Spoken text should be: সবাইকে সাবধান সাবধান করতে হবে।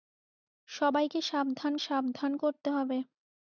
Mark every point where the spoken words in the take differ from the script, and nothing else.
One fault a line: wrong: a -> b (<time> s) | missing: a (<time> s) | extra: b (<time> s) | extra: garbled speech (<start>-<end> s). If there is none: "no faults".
no faults